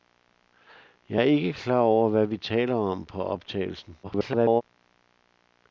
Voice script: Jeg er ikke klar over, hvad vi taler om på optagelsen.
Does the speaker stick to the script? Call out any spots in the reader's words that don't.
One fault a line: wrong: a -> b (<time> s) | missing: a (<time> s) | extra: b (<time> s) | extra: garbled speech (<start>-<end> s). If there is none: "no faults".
extra: garbled speech (4.0-4.6 s)